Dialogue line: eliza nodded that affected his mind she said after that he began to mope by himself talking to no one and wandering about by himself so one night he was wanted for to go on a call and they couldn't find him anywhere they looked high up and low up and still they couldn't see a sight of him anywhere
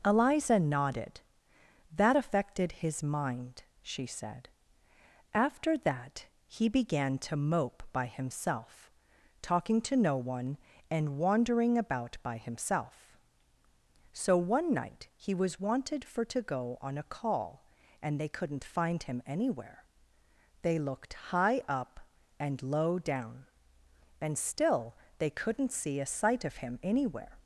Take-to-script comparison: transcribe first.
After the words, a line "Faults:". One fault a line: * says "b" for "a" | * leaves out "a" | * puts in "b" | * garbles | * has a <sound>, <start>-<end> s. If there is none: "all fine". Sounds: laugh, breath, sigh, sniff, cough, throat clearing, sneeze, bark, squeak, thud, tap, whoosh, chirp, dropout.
eliza nodded that affected his mind she said after that he began to mope by himself talking to no one and wandering about by himself so one night he was wanted for to go on a call and they couldn't find him anywhere they looked high up and low down and still they couldn't see a sight of him anywhere
Faults:
* says "down" for "up"